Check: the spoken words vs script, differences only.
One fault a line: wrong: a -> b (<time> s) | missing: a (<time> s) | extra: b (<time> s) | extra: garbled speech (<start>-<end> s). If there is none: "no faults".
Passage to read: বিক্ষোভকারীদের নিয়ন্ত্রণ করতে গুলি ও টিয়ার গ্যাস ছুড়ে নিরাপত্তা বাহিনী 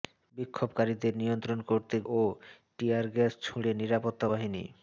missing: গুলি (1.9 s)